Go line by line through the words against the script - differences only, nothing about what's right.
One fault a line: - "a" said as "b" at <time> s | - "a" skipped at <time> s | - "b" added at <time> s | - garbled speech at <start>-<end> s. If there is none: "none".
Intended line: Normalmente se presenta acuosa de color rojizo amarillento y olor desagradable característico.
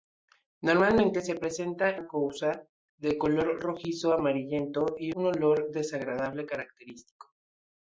none